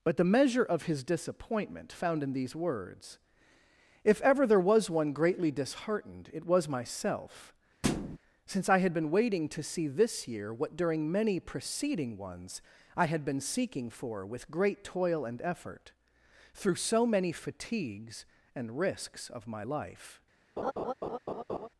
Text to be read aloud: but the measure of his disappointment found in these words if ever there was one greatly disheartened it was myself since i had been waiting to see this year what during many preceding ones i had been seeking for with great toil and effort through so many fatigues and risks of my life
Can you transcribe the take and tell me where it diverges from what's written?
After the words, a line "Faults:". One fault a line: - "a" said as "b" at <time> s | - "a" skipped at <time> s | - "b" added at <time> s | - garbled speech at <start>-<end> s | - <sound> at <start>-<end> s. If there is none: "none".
but the measure of his disappointment found in these words if ever there was one greatly disheartened it was myself since i had been waiting to see this year what during many preceding ones i had been seeking for with great toil and effort through so many fatigues and risks of my life
Faults:
- thud at 7.8-8.2 s
- laugh at 20.6-21.7 s